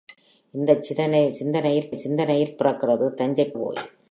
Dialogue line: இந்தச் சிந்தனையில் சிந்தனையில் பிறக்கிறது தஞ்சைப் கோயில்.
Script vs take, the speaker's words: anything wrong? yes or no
no